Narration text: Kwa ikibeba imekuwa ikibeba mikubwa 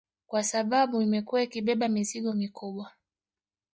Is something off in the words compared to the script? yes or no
yes